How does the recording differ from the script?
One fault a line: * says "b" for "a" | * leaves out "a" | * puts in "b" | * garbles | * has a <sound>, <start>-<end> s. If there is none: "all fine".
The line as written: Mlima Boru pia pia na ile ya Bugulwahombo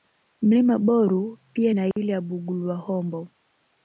* leaves out "pia"
* has a dropout, 1.9-2.0 s